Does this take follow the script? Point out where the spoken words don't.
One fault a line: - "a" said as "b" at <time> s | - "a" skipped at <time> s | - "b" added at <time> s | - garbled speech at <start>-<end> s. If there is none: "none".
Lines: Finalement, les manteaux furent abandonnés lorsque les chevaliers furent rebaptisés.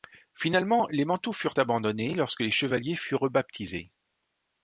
none